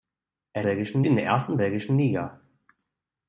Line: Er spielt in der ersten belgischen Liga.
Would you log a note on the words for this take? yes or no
yes